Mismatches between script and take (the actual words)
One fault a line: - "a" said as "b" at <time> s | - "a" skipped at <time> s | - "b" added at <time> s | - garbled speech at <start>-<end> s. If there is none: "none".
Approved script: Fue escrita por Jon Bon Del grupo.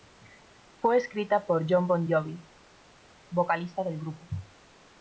- "Jovi vocalista" added at 2.1 s